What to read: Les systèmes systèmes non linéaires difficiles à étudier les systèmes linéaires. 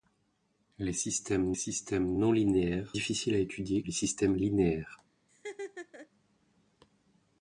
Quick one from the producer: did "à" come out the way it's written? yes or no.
yes